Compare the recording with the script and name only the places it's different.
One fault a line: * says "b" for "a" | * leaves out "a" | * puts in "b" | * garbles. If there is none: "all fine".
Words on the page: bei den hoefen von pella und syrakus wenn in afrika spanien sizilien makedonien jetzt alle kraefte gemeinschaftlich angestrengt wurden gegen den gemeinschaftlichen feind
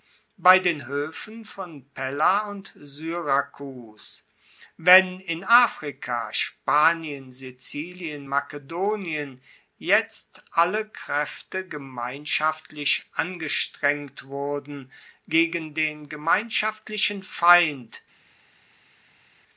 all fine